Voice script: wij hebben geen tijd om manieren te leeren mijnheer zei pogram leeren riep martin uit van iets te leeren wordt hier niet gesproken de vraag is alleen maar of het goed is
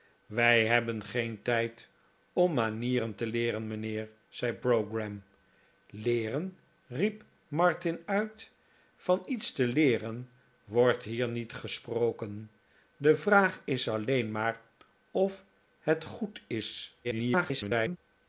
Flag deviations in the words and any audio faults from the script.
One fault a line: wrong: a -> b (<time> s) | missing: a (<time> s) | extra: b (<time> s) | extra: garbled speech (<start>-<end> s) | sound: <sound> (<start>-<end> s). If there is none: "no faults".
extra: garbled speech (17.0-18.0 s)